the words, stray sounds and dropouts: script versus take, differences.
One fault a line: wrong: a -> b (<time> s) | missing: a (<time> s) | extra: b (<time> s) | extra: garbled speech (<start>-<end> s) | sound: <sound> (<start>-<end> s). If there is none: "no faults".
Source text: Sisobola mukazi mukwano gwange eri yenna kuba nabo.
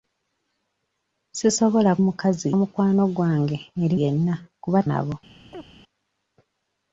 sound: chirp (5.5-5.7 s)